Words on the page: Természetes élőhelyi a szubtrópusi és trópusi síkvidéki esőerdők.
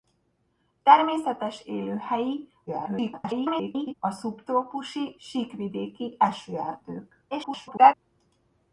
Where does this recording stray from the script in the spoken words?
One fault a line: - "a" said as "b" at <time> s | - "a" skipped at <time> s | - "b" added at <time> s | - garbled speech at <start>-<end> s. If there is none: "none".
- garbled speech at 2.7-3.9 s
- "és trópusi" skipped at 5.1 s
- garbled speech at 7.3-7.9 s